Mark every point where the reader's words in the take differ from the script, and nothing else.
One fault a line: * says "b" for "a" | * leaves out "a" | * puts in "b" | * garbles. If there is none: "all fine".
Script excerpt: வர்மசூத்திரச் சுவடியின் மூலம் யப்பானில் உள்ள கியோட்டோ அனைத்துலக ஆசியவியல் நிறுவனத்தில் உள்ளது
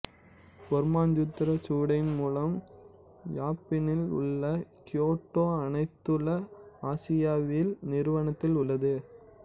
all fine